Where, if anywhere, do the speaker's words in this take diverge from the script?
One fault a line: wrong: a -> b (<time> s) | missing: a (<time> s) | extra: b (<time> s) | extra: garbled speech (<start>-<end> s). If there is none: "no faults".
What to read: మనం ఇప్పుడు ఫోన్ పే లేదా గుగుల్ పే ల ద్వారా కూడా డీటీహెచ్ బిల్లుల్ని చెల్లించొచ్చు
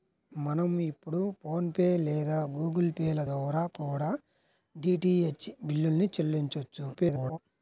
extra: garbled speech (6.9-7.4 s)